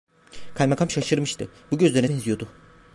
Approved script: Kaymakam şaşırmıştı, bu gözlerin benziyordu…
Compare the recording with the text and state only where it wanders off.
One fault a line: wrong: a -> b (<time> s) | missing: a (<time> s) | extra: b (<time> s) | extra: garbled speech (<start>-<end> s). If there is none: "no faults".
no faults